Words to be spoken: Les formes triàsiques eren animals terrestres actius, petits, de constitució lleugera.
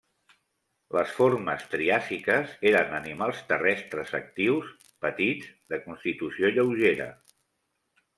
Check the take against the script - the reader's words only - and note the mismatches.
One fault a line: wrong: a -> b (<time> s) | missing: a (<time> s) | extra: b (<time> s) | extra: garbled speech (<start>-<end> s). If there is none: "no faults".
no faults